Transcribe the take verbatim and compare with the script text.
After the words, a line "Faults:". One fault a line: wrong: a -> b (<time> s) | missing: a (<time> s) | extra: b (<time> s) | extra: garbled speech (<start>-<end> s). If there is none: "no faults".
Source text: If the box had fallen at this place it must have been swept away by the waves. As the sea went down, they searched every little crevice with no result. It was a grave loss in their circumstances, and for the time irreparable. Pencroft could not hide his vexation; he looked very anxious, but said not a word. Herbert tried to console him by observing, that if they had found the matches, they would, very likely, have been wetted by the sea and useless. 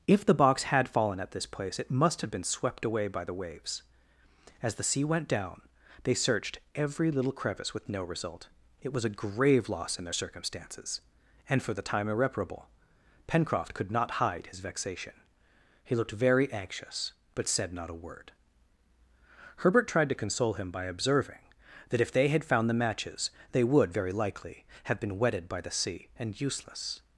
If the box had fallen at this place it must have been swept away by the waves. As the sea went down, they searched every little crevice with no result. It was a grave loss in their circumstances, and for the time irreparable. Pencroft could not hide his vexation; he looked very anxious, but said not a word. Herbert tried to console him by observing, that if they had found the matches, they would, very likely, have been wetted by the sea and useless.
Faults:
no faults